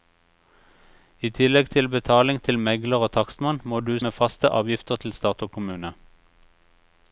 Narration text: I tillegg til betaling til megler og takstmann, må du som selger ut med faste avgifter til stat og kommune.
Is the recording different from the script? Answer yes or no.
yes